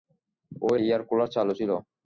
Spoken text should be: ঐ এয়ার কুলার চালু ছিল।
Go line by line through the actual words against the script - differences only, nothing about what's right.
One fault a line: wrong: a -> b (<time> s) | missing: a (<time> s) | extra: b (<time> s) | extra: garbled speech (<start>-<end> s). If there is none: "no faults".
no faults